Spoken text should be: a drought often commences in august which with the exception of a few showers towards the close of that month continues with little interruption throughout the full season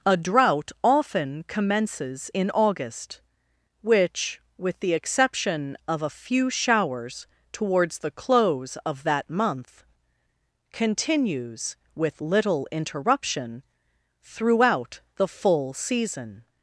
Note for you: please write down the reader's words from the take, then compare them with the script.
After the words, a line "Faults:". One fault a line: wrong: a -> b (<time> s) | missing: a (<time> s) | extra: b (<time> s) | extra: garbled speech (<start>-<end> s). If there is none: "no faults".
a drought often commences in august which with the exception of a few showers towards the close of that month continues with little interruption throughout the full season
Faults:
no faults